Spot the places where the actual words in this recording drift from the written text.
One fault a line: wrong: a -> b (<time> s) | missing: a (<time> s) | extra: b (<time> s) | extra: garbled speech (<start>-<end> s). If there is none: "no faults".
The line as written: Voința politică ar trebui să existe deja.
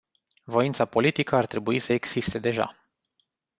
no faults